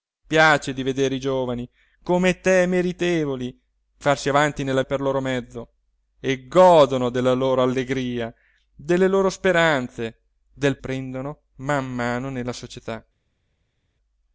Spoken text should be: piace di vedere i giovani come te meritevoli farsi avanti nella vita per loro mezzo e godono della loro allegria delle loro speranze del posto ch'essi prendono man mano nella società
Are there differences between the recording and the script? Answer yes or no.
yes